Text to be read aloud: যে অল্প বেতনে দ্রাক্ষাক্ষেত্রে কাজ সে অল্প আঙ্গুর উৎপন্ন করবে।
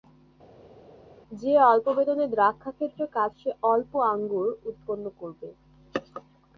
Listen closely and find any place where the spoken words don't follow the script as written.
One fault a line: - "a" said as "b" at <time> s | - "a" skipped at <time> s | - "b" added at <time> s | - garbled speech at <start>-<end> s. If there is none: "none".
none